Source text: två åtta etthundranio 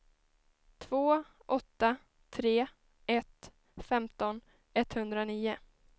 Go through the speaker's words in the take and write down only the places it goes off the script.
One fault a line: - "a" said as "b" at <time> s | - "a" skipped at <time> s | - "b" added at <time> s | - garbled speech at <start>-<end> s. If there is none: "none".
- "tre ett femton" added at 2.3 s